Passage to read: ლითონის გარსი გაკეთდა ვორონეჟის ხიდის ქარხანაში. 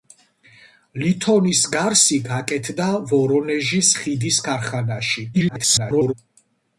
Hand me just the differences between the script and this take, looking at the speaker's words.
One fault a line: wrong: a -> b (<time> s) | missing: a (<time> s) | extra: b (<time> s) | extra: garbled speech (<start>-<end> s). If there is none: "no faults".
extra: garbled speech (5.3-6.1 s)